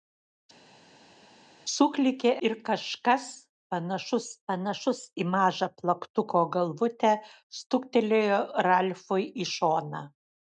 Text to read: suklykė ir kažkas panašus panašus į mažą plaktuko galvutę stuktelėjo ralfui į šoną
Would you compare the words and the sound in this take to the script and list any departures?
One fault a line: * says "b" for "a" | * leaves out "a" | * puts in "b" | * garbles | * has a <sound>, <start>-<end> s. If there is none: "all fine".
all fine